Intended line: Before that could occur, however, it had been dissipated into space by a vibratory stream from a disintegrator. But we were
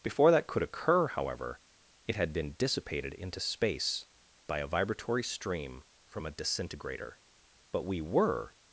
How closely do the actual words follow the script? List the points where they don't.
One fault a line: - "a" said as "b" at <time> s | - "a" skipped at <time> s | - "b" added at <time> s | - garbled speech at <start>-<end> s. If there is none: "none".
none